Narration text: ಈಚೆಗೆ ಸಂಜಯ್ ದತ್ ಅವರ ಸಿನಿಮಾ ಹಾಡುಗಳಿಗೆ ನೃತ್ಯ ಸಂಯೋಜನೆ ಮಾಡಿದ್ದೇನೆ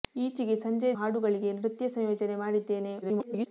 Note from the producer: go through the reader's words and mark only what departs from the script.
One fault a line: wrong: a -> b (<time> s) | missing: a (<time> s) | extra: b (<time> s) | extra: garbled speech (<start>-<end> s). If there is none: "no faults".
missing: ದತ್ ಅವರ ಸಿನಿಮಾ (0.9 s)
extra: garbled speech (3.0-3.5 s)